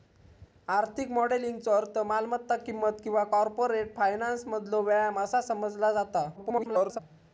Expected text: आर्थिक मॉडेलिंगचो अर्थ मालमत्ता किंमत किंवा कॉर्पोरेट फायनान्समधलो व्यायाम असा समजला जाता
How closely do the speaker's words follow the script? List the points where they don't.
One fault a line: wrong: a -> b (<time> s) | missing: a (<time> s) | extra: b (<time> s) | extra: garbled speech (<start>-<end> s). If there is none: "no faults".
extra: garbled speech (6.4-7.0 s)